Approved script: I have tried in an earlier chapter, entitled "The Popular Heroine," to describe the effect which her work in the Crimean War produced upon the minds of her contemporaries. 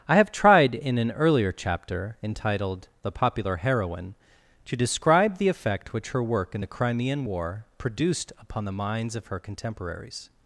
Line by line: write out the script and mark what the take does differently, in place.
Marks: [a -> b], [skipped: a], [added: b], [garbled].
I have tried in an earlier chapter, entitled "The Popular Heroine," to describe the effect which her work in the Crimean War produced upon the minds of her contemporaries.